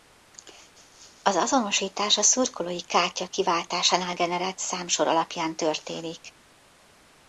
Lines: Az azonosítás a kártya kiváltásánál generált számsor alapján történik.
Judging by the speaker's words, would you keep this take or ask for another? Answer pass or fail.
fail